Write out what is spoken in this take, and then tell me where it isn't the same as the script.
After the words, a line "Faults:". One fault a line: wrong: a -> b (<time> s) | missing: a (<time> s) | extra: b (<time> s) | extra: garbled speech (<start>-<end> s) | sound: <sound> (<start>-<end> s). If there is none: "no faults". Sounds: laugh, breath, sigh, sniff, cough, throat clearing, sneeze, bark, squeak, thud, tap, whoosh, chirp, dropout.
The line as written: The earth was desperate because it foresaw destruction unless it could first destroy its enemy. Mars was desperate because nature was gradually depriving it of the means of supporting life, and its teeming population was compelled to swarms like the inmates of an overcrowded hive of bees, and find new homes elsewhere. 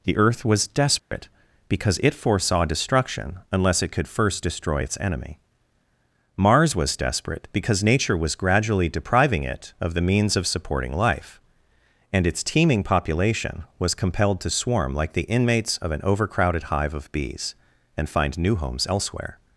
The earth was desperate because it foresaw destruction unless it could first destroy its enemy. Mars was desperate because nature was gradually depriving it of the means of supporting life, and its teeming population was compelled to swarm like the inmates of an overcrowded hive of bees, and find new homes elsewhere.
Faults:
sound: dropout (1.0-1.1 s)
wrong: swarms -> swarm (14.5 s)